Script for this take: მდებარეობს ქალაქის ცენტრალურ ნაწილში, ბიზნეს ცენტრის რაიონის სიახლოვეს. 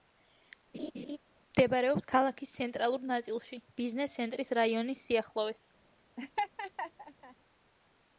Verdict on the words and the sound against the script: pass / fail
fail